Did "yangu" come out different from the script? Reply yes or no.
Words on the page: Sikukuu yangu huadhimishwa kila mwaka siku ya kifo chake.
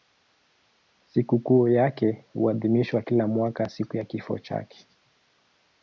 yes